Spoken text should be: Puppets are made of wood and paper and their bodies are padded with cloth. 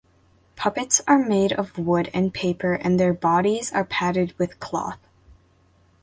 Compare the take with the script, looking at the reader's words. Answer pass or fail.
pass